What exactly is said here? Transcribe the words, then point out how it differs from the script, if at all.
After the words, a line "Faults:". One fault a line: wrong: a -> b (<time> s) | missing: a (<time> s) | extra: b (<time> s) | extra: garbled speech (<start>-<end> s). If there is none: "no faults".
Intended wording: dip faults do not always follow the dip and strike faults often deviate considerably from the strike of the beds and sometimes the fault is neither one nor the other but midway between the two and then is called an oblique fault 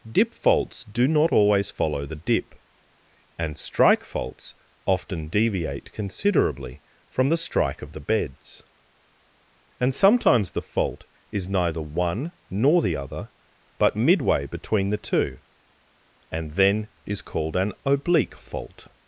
dip faults do not always follow the dip and strike faults often deviate considerably from the strike of the beds and sometimes the fault is neither one nor the other but midway between the two and then is called an oblique fault
Faults:
no faults